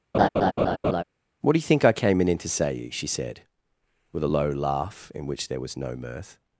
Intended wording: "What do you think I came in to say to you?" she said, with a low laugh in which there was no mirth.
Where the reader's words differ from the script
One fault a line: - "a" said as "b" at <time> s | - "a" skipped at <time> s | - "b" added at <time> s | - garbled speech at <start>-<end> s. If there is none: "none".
- "to" skipped at 2.7 s